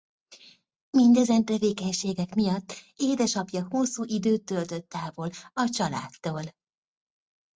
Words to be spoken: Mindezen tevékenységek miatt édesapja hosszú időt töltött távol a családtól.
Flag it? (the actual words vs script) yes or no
no